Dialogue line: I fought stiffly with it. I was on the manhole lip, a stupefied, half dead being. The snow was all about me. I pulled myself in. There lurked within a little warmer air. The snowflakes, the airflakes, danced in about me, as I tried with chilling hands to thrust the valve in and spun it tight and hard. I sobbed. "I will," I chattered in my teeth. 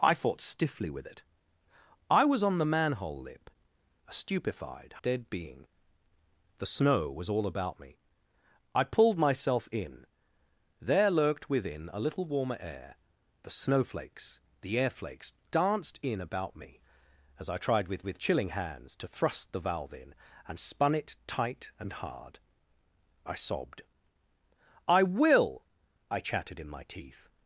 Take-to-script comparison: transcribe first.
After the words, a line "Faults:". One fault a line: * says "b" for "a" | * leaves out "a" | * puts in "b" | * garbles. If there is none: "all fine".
I fought stiffly with it. I was on the manhole lip, a stupefied, dead being. The snow was all about me. I pulled myself in. There lurked within a little warmer air. The snowflakes, the airflakes, danced in about me, as I tried with with chilling hands to thrust the valve in and spun it tight and hard. I sobbed. "I will," I chattered in my teeth.
Faults:
* leaves out "half"
* puts in "with"